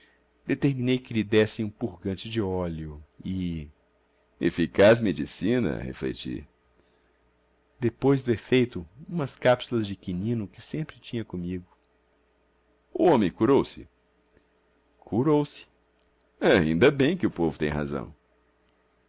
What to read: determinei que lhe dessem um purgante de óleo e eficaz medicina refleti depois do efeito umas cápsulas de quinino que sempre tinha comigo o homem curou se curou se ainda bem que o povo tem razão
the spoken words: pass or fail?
pass